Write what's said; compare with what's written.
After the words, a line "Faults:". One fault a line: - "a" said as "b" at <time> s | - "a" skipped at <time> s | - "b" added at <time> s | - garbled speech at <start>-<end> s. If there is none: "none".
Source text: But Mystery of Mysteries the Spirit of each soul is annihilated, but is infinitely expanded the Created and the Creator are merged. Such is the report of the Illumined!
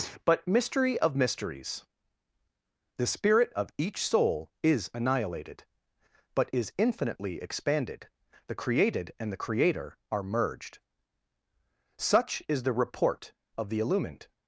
But Mystery of Mysteries the Spirit of each soul is annihilated, but is infinitely expanded the Created and the Creator are merged. Such is the report of the Illumined!
Faults:
none